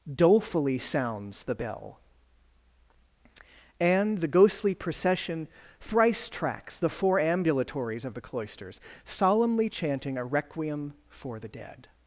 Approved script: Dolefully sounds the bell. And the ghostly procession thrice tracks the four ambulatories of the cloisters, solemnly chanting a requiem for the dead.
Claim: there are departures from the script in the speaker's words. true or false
false